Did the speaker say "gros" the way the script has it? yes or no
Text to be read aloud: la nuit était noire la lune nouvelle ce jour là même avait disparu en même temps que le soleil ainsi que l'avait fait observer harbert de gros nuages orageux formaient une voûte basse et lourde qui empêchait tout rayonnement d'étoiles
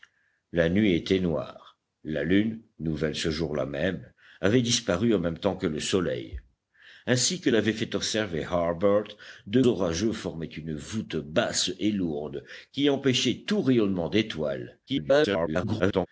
no